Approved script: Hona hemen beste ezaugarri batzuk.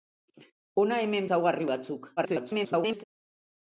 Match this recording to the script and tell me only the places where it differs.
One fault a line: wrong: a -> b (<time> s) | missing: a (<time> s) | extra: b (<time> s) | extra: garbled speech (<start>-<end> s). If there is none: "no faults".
missing: beste (1.3 s)
extra: garbled speech (2.2-3.0 s)